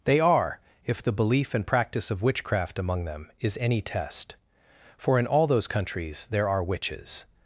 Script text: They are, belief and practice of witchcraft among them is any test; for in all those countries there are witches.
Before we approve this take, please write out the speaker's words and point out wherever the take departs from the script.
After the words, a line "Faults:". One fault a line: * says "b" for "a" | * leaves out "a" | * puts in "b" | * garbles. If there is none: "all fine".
They are, if the belief and practice of witchcraft among them is any test; for in all those countries there are witches.
Faults:
* puts in "if the"